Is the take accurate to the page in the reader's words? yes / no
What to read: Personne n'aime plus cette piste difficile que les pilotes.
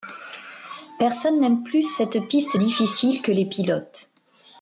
yes